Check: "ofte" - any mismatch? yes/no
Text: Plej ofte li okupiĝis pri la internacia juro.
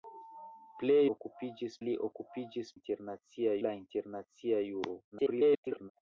yes